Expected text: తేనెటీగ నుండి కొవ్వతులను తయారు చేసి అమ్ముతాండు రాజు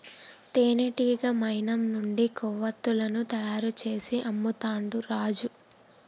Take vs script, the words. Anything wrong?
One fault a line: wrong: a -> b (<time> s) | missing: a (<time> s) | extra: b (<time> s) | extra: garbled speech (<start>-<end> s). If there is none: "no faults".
extra: మైనం (1.4 s)